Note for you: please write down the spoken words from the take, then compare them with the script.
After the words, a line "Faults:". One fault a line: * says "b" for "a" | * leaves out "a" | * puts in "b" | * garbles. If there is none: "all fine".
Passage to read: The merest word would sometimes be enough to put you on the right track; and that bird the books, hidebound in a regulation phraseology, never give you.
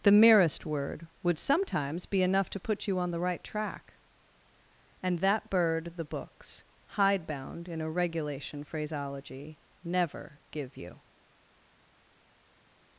The merest word would sometimes be enough to put you on the right track; and that bird the books, hidebound in a regulation phraseology, never give you.
Faults:
all fine